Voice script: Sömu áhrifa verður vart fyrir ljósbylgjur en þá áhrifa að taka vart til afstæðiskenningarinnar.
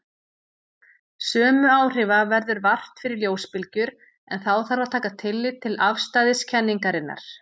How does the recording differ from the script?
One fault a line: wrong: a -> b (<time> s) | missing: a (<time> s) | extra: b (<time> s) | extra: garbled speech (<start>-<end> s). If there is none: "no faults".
wrong: áhrifa -> þarf (4.7 s)
wrong: vart -> tillit (5.2 s)